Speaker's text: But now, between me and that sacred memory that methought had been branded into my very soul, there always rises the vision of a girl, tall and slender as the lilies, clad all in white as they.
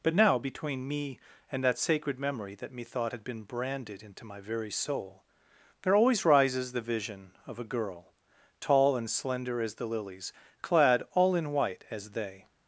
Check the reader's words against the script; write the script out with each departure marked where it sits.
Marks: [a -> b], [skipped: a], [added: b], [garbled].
But now, between me and that sacred memory that methought had been branded into my very soul, there always rises the vision of a girl, tall and slender as the lilies, clad all in white as they.